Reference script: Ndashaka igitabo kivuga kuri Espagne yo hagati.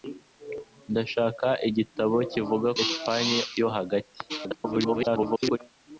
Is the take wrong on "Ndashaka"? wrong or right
right